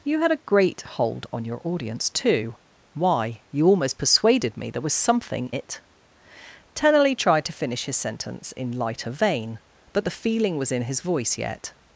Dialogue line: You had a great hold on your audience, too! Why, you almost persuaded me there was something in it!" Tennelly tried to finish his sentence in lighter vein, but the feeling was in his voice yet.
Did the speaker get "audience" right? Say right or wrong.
right